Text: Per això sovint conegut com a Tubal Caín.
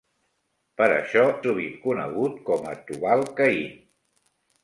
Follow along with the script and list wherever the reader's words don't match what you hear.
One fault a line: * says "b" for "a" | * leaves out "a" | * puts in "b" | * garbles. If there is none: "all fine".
all fine